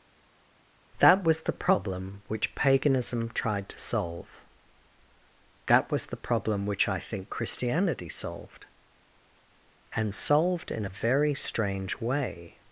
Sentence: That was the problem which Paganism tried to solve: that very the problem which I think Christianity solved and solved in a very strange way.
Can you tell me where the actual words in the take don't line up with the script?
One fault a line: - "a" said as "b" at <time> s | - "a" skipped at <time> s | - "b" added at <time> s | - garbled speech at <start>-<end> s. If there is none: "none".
- "very" said as "was" at 5.9 s